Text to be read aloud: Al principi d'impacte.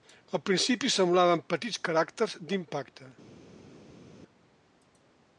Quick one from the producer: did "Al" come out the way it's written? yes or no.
yes